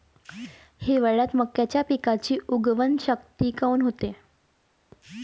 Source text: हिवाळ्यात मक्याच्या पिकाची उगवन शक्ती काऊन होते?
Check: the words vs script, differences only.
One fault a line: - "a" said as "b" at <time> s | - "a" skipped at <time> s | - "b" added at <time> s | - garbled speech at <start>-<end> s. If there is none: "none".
none